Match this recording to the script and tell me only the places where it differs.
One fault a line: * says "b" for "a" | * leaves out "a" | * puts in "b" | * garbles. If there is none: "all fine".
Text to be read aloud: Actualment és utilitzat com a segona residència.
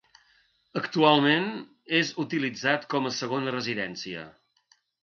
all fine